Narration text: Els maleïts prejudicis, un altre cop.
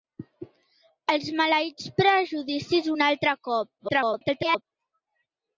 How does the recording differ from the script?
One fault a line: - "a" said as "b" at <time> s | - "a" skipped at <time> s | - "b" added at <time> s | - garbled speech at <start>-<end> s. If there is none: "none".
- garbled speech at 3.8-4.6 s